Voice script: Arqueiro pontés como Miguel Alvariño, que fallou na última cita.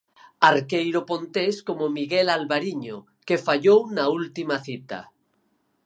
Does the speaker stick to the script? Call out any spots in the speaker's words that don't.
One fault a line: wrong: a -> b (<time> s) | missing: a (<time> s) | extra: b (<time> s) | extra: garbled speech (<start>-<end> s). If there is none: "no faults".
no faults